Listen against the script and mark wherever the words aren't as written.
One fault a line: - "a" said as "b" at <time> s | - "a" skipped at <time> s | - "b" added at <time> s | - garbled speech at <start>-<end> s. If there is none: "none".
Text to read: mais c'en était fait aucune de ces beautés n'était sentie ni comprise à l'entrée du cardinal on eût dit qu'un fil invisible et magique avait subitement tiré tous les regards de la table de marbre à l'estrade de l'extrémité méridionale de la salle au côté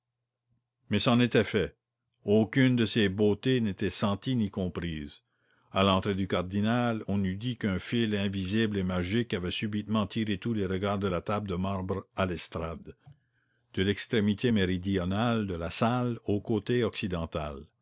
none